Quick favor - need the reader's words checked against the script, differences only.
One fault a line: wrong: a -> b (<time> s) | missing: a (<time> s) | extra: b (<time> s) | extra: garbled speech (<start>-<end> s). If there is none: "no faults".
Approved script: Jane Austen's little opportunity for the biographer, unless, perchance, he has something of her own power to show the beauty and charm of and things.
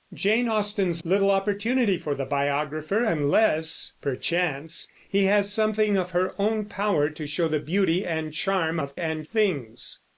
no faults